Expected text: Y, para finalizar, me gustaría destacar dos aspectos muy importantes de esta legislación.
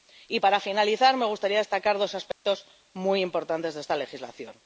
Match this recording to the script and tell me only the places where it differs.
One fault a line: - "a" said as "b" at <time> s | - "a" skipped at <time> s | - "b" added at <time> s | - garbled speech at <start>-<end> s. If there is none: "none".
none